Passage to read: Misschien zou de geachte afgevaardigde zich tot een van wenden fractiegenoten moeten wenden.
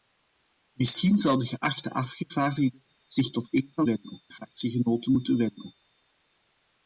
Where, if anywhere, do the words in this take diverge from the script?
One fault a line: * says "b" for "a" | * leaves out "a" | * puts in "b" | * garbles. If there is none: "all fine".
all fine